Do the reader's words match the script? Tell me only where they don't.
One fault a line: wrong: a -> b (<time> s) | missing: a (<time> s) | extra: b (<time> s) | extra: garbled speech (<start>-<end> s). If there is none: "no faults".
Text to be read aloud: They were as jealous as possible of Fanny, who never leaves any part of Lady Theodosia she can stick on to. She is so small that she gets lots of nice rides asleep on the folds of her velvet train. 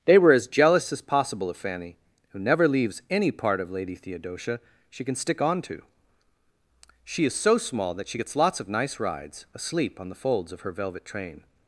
no faults